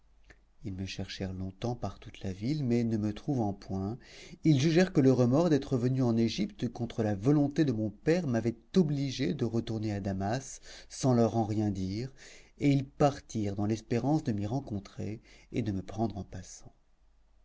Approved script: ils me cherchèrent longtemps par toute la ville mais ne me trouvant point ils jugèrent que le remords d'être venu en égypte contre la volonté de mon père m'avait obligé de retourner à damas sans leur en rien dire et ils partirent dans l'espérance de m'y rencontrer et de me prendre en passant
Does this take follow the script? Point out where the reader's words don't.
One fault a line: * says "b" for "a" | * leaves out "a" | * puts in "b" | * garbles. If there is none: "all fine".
all fine